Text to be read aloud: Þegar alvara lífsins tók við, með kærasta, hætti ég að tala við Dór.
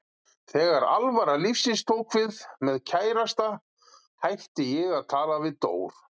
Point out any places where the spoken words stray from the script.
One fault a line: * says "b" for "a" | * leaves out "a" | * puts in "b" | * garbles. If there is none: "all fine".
all fine